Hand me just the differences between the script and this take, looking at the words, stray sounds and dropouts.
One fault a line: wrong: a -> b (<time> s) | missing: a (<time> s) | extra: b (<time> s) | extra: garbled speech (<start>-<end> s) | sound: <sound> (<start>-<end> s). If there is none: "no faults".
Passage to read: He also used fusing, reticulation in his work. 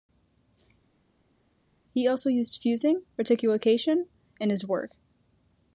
no faults